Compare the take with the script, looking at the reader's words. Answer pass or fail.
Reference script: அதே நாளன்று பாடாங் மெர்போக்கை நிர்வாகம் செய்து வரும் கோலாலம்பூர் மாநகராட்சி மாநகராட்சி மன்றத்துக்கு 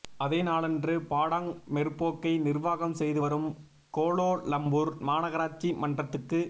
fail